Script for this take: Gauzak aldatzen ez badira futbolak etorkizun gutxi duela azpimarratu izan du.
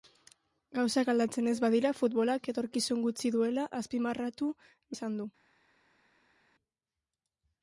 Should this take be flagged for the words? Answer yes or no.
no